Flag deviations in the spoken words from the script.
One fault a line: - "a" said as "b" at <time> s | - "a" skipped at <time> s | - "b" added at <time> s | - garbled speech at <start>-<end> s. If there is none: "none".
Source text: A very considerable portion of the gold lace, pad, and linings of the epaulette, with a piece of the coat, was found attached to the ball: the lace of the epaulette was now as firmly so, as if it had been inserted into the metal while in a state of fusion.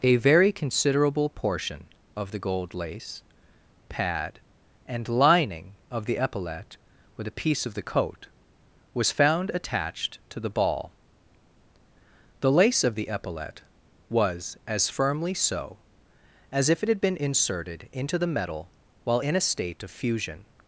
- "linings" said as "lining" at 5.1 s
- "now" skipped at 14.6 s